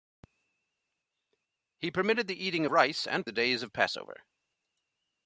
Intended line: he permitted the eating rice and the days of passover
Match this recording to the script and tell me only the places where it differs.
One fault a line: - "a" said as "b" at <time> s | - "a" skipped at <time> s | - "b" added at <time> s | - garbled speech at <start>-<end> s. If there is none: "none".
none